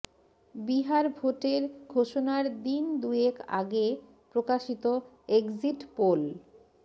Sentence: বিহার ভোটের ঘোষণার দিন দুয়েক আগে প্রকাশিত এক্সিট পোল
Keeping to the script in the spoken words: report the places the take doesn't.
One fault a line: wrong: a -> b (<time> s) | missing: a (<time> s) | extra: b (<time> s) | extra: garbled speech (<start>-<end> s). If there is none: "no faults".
no faults